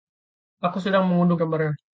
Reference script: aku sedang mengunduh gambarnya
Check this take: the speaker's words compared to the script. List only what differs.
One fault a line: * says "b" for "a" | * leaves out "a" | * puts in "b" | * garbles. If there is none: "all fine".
all fine